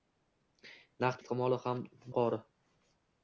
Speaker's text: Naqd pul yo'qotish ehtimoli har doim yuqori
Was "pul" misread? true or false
true